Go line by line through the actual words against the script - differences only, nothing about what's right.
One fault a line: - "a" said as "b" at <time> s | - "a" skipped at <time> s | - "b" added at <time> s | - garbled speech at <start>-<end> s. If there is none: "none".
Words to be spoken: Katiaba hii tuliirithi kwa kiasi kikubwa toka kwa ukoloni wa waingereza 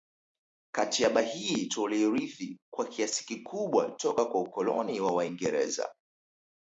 none